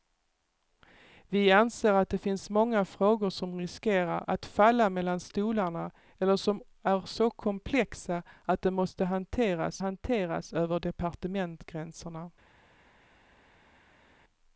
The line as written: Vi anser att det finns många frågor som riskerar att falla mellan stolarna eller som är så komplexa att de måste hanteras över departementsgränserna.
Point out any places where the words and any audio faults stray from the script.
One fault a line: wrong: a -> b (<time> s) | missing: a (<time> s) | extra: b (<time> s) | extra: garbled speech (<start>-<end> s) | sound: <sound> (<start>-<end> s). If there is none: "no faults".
extra: hanteras (9.8 s)